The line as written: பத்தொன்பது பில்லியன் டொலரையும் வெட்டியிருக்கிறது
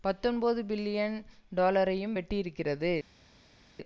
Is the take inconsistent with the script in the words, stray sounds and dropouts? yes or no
no